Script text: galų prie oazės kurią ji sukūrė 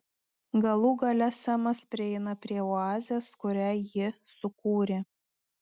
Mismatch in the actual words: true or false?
true